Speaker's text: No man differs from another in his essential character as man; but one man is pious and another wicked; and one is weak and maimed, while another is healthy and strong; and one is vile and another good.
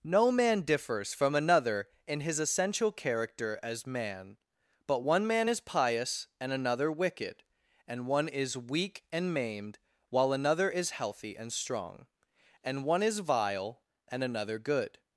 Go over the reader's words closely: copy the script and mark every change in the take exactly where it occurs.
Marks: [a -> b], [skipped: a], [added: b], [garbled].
No man differs from another in his essential character as man; but one man is pious and another wicked; and one is weak and maimed, while another is healthy and strong; and one is vile and another good.